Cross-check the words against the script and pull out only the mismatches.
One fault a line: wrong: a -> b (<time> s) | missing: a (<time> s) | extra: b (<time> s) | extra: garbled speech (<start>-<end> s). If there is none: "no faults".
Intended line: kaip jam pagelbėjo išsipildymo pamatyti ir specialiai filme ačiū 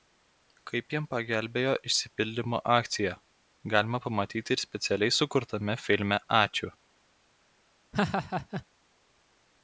extra: akcija galima (2.8 s)
extra: sukurtame (5.2 s)